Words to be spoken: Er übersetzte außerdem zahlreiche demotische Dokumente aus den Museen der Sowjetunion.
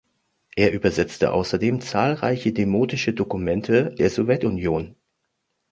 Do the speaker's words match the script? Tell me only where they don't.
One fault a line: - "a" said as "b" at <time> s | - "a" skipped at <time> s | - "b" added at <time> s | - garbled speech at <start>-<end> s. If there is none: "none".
- "aus den Museen" skipped at 3.9 s